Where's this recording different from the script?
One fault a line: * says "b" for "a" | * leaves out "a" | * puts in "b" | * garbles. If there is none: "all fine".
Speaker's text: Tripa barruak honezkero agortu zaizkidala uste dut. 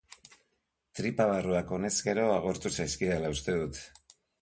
all fine